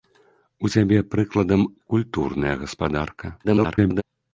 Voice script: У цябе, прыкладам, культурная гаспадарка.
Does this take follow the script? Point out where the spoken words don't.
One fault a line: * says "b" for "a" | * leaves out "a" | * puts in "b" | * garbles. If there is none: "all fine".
* garbles